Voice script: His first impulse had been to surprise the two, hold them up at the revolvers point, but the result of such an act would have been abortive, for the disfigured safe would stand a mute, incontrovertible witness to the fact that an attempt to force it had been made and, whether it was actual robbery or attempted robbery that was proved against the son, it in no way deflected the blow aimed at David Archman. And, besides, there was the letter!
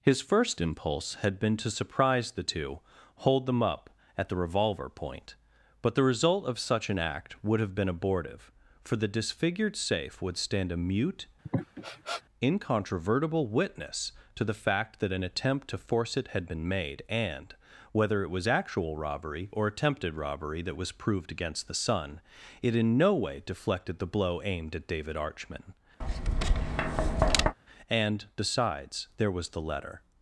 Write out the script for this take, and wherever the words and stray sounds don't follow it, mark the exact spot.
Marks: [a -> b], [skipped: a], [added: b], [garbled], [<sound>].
His first impulse had been to surprise the two, hold them up at the [revolvers -> revolver] point, but the result of such an act would have been abortive, for the disfigured safe would stand a mute, [sniff] incontrovertible witness to the fact that an attempt to force it had been made and, whether it was actual robbery or attempted robbery that was proved against the son, it in no way deflected the blow aimed at David Archman. [tap] And, besides, there was the letter!